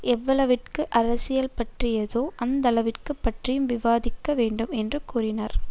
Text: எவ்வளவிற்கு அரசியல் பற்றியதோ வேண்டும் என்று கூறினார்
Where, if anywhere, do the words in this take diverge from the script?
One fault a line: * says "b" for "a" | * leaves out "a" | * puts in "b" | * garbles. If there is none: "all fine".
* puts in "அந்தளவிற்கு பற்றியும் விவாதிக்க"